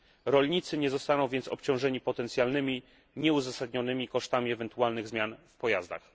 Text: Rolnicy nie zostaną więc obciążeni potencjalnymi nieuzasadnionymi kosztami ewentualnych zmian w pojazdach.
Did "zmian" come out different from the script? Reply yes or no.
no